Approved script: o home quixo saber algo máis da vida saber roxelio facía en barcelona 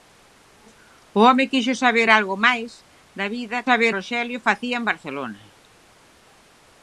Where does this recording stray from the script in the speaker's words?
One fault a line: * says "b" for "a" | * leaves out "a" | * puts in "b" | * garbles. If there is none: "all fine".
all fine